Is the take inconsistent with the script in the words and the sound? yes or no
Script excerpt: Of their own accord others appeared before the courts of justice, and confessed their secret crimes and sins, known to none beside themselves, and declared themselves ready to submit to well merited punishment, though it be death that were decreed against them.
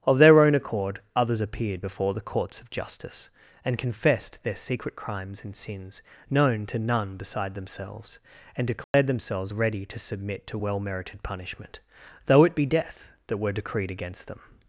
yes